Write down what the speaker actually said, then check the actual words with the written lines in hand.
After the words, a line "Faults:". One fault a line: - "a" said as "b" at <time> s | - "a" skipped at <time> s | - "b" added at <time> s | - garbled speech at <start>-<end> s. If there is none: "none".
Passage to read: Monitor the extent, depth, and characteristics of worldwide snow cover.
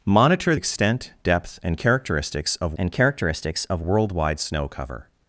Monitor extent, depth, and characteristics of and characteristics of worldwide snow cover.
Faults:
- "the" skipped at 0.6 s
- "and characteristics of" added at 2.8 s